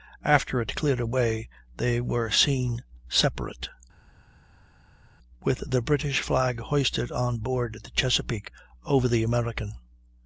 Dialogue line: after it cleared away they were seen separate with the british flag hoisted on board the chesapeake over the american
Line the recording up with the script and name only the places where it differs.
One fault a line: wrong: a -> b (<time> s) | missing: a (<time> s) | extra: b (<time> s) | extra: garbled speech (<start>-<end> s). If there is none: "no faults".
no faults